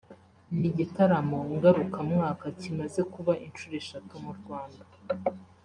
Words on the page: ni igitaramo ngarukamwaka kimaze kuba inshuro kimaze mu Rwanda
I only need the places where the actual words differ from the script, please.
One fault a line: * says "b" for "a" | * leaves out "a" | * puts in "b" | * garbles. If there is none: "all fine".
* says "eshatu" for "kimaze"